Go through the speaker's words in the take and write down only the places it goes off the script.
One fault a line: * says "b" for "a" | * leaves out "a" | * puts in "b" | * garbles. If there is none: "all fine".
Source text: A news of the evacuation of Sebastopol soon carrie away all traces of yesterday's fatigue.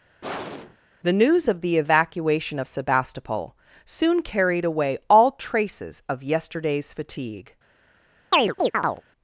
* says "The" for "A"
* says "carried" for "carrie"